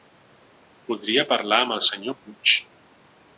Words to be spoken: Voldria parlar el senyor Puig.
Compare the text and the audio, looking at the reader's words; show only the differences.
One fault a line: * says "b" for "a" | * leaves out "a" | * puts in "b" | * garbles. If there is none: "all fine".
* puts in "amb"